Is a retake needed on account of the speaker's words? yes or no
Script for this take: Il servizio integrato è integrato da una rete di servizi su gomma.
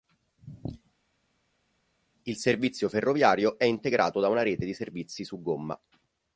yes